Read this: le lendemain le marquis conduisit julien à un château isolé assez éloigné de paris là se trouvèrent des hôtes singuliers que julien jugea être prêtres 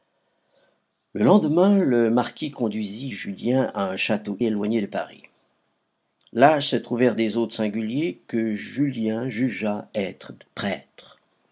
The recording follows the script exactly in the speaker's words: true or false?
false